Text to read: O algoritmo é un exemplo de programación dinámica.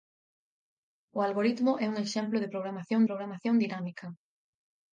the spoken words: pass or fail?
fail